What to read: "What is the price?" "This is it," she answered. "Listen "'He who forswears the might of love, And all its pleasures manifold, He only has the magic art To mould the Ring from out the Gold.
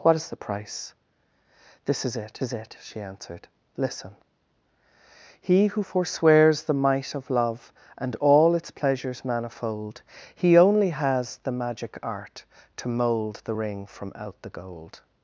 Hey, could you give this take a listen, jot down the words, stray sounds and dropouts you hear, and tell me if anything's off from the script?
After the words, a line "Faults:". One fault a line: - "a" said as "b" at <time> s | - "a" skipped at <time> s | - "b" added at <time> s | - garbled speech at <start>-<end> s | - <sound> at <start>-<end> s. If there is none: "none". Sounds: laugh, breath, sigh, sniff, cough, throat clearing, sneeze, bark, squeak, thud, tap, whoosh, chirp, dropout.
"What is the price?" "This is it is it," she answered. "Listen "'He who forswears the might of love, And all its pleasures manifold, He only has the magic art To mould the Ring from out the Gold.
Faults:
- "is it" added at 2.4 s